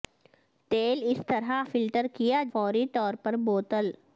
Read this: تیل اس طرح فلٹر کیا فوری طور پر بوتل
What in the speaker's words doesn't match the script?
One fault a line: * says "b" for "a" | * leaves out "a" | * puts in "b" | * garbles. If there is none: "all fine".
all fine